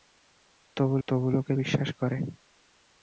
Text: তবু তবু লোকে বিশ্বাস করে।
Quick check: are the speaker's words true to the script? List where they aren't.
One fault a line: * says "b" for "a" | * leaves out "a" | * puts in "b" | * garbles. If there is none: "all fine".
all fine